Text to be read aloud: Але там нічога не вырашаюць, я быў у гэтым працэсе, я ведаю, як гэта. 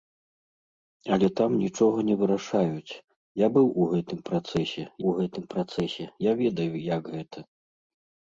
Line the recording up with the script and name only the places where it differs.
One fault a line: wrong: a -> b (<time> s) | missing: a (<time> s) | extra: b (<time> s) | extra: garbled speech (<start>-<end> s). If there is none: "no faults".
extra: у гэтым працэсе (5.1 s)